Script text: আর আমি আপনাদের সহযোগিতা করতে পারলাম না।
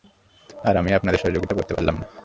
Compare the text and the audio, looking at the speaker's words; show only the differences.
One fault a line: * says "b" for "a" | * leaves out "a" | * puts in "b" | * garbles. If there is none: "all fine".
all fine